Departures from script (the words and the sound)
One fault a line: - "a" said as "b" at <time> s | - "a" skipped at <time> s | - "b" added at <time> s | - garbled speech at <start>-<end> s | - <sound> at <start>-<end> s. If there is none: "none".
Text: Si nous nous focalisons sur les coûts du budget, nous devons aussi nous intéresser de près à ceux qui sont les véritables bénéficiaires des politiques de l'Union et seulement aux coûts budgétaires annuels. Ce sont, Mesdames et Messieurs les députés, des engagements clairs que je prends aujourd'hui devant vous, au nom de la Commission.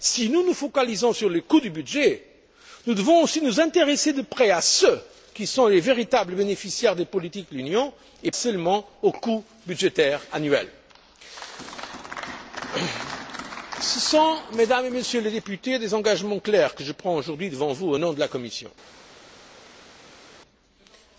none